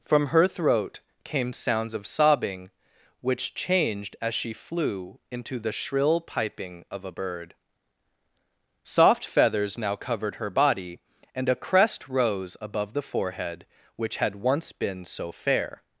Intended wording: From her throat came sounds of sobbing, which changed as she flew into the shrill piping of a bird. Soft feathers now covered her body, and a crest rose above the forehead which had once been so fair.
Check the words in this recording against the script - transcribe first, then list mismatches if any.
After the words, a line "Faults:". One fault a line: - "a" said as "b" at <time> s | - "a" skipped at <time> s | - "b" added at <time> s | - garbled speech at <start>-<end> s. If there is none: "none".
From her throat came sounds of sobbing, which changed as she flew into the shrill piping of a bird. Soft feathers now covered her body, and a crest rose above the forehead which had once been so fair.
Faults:
none